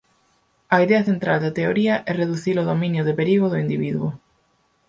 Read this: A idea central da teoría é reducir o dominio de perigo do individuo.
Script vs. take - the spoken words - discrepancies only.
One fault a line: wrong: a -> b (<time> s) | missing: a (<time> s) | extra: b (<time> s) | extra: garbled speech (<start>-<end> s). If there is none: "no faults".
no faults